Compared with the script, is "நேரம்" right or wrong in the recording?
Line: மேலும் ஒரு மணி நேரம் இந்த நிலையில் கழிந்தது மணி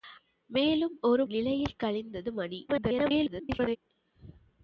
wrong